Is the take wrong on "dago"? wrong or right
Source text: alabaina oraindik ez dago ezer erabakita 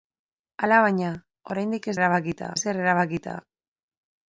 wrong